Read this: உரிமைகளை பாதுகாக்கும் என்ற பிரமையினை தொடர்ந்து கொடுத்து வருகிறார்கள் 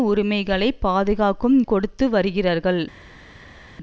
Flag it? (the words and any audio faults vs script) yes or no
yes